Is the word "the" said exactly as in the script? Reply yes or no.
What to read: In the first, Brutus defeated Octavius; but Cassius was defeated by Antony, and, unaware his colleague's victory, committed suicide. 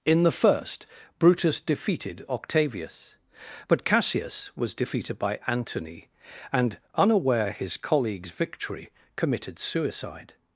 yes